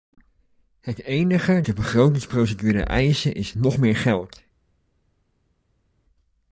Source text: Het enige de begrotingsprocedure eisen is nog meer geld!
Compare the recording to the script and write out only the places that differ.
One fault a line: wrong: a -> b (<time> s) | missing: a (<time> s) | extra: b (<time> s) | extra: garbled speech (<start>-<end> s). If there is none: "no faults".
no faults